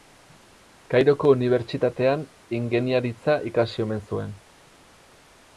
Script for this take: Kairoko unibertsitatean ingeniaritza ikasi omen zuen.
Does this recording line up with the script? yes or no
yes